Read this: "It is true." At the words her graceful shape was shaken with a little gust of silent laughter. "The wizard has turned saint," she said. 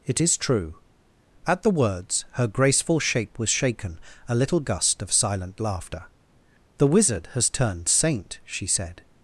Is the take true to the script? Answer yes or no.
no